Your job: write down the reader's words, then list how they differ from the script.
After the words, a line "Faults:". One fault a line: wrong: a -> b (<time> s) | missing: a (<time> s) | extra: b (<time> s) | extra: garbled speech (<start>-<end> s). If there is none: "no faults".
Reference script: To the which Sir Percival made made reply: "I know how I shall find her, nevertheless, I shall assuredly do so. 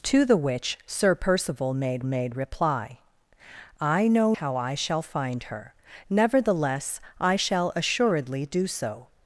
To the which Sir Percival made made reply: "I know how I shall find her, nevertheless, I shall assuredly do so.
Faults:
no faults